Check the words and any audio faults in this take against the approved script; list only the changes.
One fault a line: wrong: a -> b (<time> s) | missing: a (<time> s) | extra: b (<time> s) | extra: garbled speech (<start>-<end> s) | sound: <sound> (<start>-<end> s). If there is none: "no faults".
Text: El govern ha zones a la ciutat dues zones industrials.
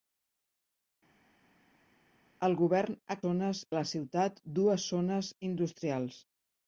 no faults